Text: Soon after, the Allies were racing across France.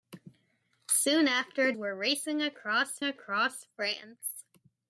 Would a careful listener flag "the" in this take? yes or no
yes